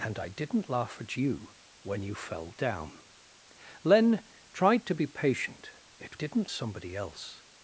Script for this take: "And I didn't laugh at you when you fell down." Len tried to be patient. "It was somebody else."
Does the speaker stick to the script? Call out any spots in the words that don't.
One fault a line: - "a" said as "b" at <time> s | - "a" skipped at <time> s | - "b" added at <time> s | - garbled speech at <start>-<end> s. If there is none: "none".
- "was" said as "didn't" at 6.1 s